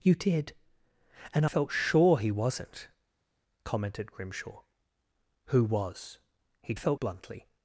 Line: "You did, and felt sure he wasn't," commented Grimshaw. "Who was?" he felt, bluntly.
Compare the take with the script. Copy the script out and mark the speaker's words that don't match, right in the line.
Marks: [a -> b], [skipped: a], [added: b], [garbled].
"You did, and felt sure he wasn't," commented Grimshaw. "Who was?" he felt, bluntly.